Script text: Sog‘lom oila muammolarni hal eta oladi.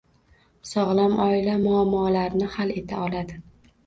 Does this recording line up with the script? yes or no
yes